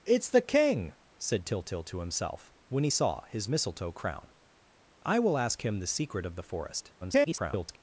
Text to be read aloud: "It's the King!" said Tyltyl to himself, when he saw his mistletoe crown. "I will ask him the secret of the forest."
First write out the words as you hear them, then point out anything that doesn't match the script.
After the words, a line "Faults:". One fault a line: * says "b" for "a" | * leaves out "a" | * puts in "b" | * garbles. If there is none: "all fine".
"It's the King!" said Tyltyl to himself, when he saw his mistletoe crown. "I will ask him the secret of the forest." [garbled]
Faults:
* garbles